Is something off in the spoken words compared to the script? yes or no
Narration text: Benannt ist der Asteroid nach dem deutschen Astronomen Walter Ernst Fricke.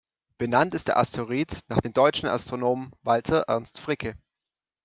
no